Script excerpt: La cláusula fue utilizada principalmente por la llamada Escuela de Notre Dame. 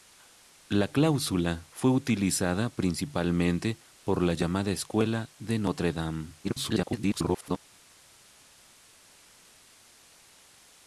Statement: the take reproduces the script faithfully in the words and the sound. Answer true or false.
false